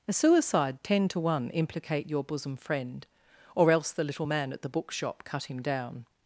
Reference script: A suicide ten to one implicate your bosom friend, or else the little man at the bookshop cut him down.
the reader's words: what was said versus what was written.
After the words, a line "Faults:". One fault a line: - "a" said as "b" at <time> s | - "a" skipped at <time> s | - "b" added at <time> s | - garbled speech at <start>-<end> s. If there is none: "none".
A suicide ten to one implicate your bosom friend, or else the little man at the bookshop cut him down.
Faults:
none